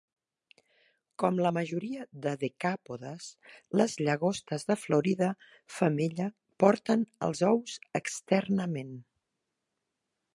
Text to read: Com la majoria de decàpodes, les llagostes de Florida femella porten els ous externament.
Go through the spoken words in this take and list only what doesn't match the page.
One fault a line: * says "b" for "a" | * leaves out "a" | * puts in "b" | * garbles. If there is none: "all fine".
all fine